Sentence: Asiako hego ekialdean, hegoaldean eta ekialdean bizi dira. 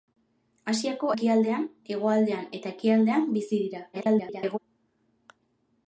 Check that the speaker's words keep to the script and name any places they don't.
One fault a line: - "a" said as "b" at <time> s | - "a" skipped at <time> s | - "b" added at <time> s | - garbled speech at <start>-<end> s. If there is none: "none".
- "hego" skipped at 1.1 s
- garbled speech at 3.9-4.6 s